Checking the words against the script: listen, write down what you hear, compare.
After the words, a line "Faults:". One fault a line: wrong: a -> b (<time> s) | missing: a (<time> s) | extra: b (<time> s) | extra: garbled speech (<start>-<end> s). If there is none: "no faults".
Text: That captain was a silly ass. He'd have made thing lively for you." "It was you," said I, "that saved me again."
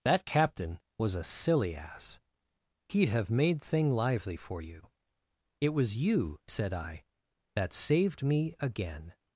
That captain was a silly ass. He'd have made thing lively for you." "It was you," said I, "that saved me again."
Faults:
no faults